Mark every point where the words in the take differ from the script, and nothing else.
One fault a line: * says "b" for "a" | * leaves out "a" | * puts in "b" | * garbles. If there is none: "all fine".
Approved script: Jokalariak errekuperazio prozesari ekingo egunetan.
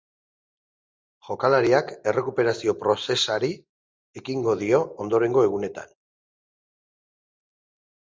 * puts in "dio ondorengo"